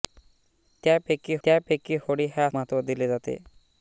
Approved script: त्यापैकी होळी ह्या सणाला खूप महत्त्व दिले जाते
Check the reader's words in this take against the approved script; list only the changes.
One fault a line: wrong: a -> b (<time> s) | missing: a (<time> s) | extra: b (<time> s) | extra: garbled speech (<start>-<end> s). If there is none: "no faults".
extra: त्यापैकी (1.4 s)
missing: सणाला खूप (2.5 s)